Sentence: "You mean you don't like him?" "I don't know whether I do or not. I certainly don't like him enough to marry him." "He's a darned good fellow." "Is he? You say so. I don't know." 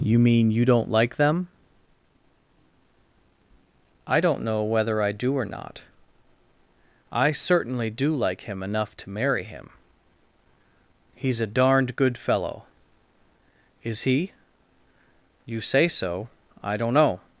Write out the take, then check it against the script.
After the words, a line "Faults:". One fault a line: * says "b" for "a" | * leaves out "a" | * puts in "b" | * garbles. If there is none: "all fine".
"You mean you don't like them?" "I don't know whether I do or not. I certainly do like him enough to marry him." "He's a darned good fellow." "Is he? You say so. I don't know."
Faults:
* says "them" for "him"
* says "do" for "don't"